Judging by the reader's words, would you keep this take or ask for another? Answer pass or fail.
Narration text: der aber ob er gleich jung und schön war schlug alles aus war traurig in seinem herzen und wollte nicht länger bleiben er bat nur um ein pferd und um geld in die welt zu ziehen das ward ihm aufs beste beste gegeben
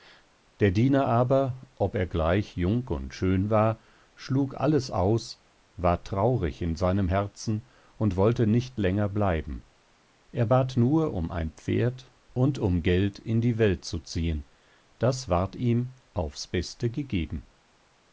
fail